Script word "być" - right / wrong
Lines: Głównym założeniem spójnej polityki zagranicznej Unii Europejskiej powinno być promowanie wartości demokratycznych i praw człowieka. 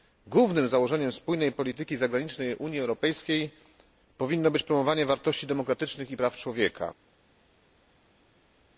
right